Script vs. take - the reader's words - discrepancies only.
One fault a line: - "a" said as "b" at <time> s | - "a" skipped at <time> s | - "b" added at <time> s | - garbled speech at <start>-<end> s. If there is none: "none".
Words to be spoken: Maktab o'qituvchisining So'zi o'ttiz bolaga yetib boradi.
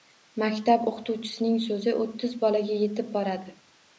none